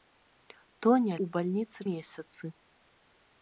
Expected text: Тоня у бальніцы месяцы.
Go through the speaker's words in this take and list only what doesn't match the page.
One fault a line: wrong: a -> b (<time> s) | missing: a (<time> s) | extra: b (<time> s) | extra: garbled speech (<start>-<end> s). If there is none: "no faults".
no faults